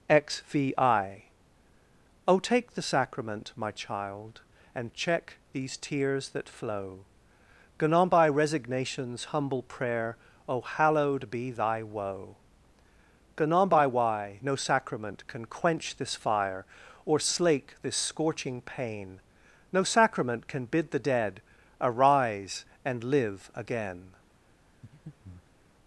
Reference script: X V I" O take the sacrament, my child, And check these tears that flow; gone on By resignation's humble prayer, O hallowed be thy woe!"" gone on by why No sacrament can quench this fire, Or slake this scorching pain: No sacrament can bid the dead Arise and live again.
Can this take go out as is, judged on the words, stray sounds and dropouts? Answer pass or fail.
fail